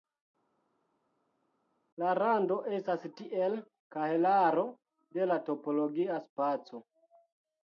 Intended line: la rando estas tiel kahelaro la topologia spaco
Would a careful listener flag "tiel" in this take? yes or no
no